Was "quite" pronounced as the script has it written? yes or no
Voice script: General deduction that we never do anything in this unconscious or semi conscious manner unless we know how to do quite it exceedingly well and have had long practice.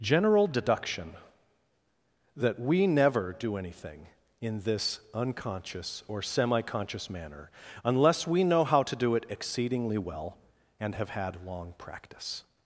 no